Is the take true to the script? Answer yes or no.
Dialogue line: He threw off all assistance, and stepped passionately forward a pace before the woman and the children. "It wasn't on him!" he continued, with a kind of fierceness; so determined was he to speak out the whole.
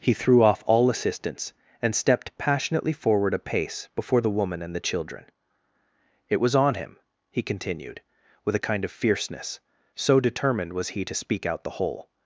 no